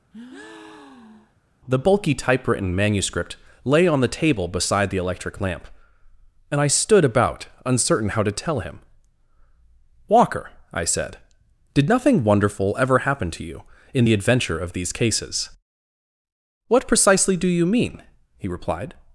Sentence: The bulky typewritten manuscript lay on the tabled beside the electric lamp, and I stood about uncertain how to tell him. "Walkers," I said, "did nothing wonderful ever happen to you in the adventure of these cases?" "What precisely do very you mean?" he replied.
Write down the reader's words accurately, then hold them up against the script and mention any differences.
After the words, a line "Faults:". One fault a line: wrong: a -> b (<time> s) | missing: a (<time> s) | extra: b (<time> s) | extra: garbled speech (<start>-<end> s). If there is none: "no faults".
The bulky typewritten manuscript lay on the table beside the electric lamp, and I stood about uncertain how to tell him. "Walker," I said, "did nothing wonderful ever happen to you in the adventure of these cases?" "What precisely do you mean?" he replied.
Faults:
wrong: tabled -> table (4.1 s)
wrong: Walkers -> Walker (10.1 s)
missing: very (17.5 s)